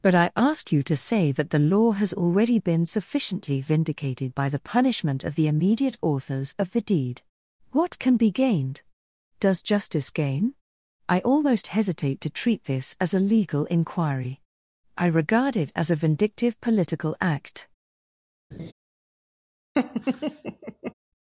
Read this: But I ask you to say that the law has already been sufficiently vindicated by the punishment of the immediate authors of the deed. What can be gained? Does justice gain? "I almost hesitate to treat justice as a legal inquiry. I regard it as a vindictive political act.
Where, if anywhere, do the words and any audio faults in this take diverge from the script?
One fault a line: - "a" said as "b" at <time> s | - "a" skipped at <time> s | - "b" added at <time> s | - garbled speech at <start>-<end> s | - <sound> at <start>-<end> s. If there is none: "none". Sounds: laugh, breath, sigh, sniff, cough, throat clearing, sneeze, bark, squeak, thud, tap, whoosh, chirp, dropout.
- "justice" said as "this" at 12.6 s
- laugh at 18.5-18.7 s
- laugh at 19.7-20.9 s